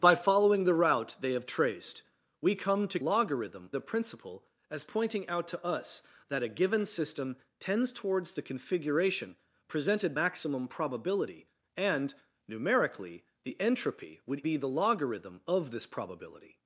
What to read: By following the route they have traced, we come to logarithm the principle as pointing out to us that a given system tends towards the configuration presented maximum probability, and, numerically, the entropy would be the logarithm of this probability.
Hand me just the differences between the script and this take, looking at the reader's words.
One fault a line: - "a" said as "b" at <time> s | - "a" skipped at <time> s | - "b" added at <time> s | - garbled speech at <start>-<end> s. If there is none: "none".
none